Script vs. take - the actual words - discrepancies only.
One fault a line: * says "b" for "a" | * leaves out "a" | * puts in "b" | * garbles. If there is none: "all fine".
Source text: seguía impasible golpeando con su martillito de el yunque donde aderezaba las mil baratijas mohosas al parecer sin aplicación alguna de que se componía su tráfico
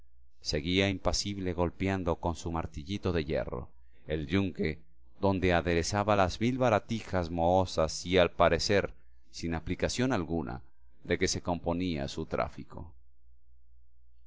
* puts in "hierro"
* puts in "y"